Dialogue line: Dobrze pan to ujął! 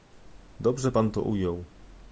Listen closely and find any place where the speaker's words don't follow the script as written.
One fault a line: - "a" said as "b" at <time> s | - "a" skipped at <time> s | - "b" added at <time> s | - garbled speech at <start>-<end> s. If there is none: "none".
none